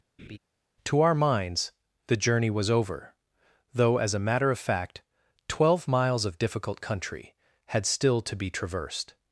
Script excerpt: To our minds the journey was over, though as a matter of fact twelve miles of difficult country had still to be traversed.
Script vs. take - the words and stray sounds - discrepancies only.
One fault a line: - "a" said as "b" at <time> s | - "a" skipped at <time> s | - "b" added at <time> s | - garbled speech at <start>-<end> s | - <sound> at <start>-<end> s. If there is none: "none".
- laugh at 0.2-0.4 s